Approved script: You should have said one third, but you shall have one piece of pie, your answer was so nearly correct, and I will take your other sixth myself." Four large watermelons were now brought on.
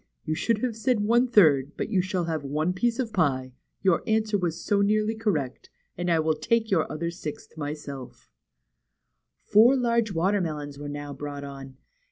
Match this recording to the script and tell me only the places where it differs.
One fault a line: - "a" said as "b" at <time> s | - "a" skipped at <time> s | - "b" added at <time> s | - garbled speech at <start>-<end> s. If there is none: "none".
none